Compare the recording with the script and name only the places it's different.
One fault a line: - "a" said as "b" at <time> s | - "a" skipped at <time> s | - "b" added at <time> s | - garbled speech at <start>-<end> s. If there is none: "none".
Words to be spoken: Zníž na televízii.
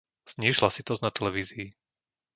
- "hlasitosť" added at 0.6 s